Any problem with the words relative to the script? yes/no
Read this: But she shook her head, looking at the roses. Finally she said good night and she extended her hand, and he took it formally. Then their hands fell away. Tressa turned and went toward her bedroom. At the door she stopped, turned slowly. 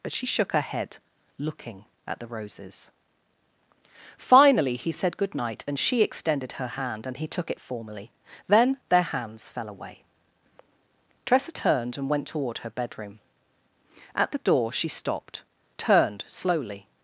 yes